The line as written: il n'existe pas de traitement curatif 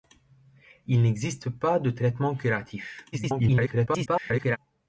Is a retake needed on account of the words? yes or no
yes